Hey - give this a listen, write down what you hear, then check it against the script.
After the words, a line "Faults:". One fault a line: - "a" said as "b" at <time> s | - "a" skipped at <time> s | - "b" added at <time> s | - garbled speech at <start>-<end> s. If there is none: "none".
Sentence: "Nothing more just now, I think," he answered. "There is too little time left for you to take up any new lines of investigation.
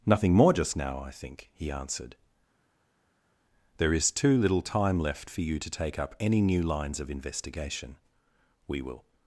"Nothing more just now, I think," he answered. "There is too little time left for you to take up any new lines of investigation. We will
Faults:
- "We will" added at 8.7 s